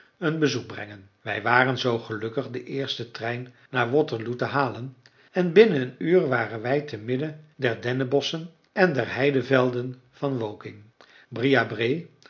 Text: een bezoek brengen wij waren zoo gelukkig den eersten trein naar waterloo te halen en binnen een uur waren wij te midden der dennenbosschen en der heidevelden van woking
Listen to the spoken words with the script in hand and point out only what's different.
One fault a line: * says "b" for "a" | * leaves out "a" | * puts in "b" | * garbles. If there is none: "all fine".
all fine